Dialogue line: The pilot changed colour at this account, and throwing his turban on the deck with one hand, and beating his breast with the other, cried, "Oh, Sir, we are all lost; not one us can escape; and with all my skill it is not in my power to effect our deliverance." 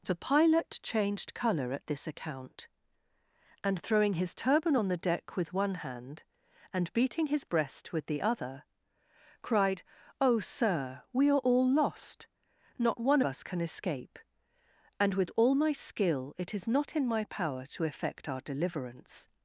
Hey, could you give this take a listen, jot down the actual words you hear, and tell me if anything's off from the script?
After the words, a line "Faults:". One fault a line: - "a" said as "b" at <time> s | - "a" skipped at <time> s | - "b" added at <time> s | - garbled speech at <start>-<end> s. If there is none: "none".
The pilot changed colour at this account, and throwing his turban on the deck with one hand, and beating his breast with the other, cried, "Oh, Sir, we are all lost; not one us can escape; and with all my skill it is not in my power to effect our deliverance."
Faults:
none